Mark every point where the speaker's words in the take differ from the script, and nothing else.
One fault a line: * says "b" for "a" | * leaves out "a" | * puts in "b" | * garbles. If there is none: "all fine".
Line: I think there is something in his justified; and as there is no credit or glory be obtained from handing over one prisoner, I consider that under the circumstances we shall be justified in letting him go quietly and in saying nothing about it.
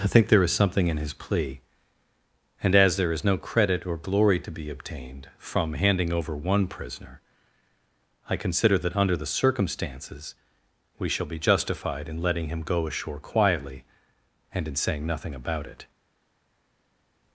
* says "plea" for "justified"
* puts in "to"
* puts in "ashore"